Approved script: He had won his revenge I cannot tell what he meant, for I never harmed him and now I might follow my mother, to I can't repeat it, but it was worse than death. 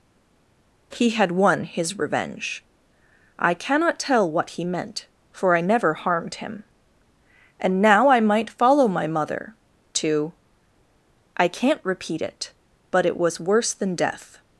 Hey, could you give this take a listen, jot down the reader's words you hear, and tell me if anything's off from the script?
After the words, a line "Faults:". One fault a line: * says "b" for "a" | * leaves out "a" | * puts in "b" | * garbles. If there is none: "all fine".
He had won his revenge I cannot tell what he meant, for I never harmed him and now I might follow my mother, to I can't repeat it, but it was worse than death.
Faults:
all fine